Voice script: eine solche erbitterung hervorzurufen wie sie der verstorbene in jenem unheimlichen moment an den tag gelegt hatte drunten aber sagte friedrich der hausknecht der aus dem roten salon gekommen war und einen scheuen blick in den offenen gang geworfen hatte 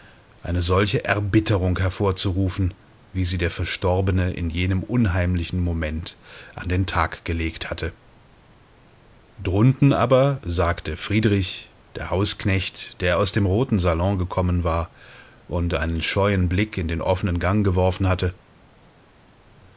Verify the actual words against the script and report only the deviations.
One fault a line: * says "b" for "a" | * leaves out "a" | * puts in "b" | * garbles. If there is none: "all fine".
all fine